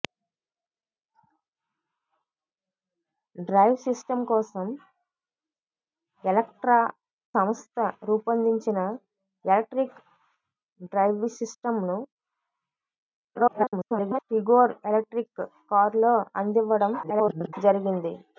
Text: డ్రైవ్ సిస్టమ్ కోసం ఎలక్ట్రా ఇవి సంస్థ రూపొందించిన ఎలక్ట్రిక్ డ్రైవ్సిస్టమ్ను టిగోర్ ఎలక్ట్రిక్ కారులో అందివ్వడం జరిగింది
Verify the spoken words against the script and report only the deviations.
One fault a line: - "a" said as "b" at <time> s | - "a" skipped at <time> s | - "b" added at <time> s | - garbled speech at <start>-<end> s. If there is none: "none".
- "ఇవి" skipped at 6.8 s
- garbled speech at 13.3-14.2 s
- garbled speech at 17.0-17.5 s